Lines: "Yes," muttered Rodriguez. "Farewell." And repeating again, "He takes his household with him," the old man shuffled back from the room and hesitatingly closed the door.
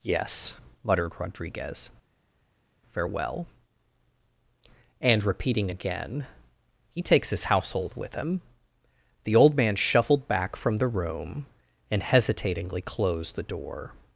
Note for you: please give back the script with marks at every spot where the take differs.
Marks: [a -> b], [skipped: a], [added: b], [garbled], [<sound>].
"Yes," muttered Rodriguez. "Farewell." And repeating again, "He takes his household with him," the old man shuffled back from the room and hesitatingly closed the door.